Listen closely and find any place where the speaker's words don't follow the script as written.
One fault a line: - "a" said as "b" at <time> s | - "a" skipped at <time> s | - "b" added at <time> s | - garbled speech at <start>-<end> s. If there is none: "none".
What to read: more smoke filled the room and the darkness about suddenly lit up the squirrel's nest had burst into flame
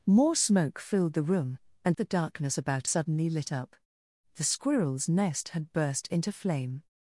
none